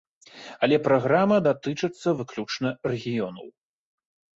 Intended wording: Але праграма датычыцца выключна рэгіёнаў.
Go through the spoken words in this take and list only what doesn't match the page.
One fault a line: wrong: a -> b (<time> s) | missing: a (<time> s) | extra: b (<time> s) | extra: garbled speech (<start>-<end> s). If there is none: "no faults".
no faults